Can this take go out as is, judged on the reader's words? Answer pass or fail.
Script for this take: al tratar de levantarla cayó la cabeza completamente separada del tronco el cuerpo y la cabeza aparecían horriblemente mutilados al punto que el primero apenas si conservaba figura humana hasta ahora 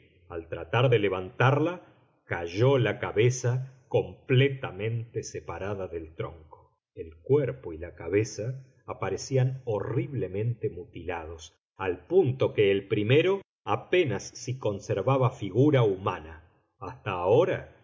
pass